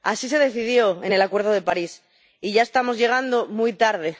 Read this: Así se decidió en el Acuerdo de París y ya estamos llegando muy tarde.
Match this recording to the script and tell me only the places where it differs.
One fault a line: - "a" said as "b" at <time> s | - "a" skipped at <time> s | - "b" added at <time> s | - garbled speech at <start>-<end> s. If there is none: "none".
none